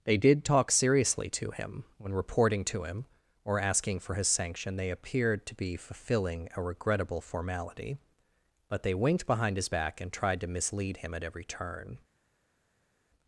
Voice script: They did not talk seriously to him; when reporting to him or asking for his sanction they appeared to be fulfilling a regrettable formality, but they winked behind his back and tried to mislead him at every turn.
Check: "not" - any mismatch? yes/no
yes